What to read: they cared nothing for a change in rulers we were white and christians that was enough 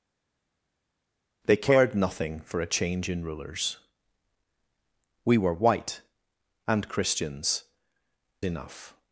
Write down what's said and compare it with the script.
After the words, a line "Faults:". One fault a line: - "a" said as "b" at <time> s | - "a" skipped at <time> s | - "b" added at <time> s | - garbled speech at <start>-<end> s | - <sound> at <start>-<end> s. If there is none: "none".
they cared nothing for a change in rulers we were white and christians enough
Faults:
- "that was" skipped at 7.6 s